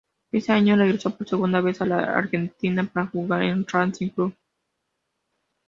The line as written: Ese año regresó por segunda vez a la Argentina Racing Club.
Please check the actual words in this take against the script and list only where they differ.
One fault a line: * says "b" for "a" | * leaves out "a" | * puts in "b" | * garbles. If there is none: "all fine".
* puts in "para jugar en"